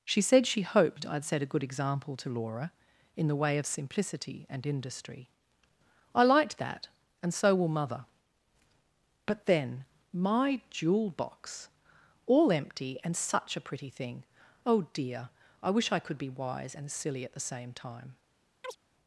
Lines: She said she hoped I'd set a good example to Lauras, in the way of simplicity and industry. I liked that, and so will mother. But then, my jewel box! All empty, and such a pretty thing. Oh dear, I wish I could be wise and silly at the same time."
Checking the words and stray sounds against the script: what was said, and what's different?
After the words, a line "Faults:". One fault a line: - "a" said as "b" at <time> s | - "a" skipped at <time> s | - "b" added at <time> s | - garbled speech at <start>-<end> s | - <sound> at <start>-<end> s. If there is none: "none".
She said she hoped I'd set a good example to Laura, in the way of simplicity and industry. I liked that, and so will mother. But then, my jewel box! All empty, and such a pretty thing. Oh dear, I wish I could be wise and silly at the same time."
Faults:
- "Lauras" said as "Laura" at 2.3 s
- chirp at 18.6-18.8 s